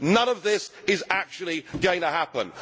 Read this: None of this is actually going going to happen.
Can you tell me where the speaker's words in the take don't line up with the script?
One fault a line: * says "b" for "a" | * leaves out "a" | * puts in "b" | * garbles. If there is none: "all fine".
* leaves out "going"